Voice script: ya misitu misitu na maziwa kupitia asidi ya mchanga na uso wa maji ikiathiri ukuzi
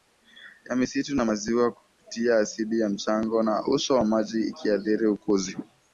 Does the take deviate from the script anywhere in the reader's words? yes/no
yes